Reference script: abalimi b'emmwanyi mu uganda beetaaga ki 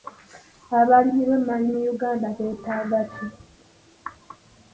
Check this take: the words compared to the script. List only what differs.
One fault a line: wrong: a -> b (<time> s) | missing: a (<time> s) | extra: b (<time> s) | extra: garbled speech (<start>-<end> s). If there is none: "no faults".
no faults